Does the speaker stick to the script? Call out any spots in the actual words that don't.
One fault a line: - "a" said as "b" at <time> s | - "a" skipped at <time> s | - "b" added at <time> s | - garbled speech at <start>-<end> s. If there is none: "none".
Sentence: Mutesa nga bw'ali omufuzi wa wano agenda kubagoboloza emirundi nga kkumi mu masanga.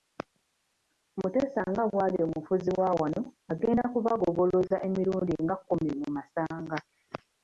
none